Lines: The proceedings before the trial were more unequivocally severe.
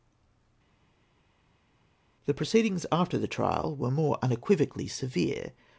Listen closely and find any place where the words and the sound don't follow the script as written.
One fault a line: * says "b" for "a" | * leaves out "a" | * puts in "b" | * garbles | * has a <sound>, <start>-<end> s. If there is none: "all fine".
* says "after" for "before"